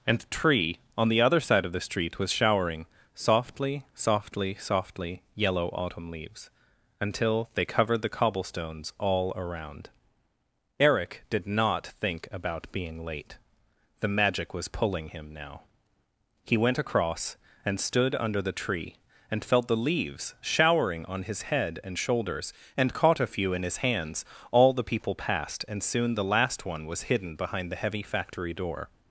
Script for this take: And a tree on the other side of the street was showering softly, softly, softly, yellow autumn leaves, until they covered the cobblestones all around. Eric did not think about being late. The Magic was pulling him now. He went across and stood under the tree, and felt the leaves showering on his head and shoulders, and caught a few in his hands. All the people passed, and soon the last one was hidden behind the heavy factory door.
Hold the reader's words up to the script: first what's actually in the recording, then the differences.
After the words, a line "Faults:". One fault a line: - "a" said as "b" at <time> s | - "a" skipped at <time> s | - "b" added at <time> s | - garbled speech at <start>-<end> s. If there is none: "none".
And the tree on the other side of the street was showering softly, softly, softly, yellow autumn leaves, until they covered the cobblestones all around. Eric did not think about being late. The Magic was pulling him now. He went across and stood under the tree, and felt the leaves showering on his head and shoulders, and caught a few in his hands. All the people passed, and soon the last one was hidden behind the heavy factory door.
Faults:
- "a" said as "the" at 0.2 s